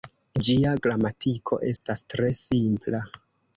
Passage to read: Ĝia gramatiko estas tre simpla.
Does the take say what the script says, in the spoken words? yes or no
yes